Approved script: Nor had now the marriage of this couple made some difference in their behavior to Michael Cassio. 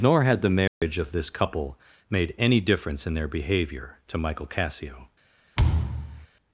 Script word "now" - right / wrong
wrong